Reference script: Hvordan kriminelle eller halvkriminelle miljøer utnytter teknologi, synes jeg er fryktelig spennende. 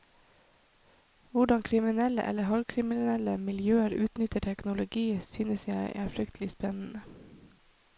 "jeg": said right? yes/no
yes